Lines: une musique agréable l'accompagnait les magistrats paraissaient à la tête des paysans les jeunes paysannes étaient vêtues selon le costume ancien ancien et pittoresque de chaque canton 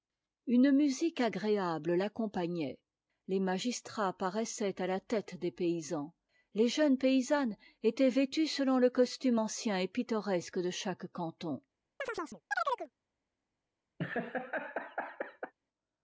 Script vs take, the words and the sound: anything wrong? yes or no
yes